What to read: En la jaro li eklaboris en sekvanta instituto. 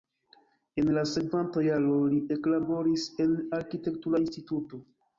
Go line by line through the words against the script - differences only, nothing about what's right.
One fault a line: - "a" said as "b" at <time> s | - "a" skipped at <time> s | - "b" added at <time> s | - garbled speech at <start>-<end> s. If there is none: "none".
- "sekvanta" added at 1.1 s
- "sekvanta" said as "arkitektura" at 3.6 s